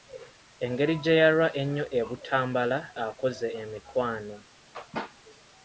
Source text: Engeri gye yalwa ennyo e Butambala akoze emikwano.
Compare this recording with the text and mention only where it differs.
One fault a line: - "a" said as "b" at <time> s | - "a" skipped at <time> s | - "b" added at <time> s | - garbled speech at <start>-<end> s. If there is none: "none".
none